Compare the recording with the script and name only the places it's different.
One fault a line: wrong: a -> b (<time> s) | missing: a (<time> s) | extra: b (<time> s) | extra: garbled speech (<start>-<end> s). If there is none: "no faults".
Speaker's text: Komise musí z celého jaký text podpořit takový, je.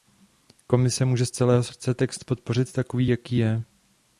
wrong: musí -> může (1.1 s)
wrong: jaký -> srdce (1.6 s)
extra: jaký (3.1 s)